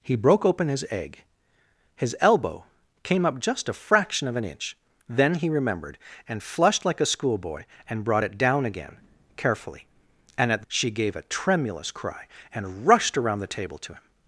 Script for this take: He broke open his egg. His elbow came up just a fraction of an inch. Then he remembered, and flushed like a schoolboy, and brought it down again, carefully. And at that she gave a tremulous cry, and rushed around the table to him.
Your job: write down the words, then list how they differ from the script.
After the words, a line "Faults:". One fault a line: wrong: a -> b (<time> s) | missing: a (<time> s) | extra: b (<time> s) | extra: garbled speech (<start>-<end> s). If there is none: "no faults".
He broke open his egg. His elbow came up just a fraction of an inch. Then he remembered, and flushed like a schoolboy, and brought it down again, carefully. And at she gave a tremulous cry, and rushed around the table to him.
Faults:
missing: that (10.7 s)